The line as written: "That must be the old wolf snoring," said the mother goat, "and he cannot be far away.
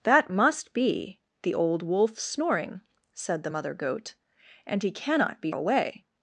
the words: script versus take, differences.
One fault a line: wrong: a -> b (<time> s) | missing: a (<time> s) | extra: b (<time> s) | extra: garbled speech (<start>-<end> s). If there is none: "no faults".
missing: far (5.5 s)